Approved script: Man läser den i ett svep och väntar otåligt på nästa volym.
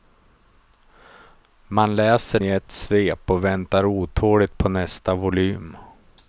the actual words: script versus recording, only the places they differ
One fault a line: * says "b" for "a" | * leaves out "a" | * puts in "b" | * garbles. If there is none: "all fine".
* leaves out "den"